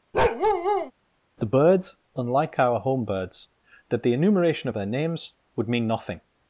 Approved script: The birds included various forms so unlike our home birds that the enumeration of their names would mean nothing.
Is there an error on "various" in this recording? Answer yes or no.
yes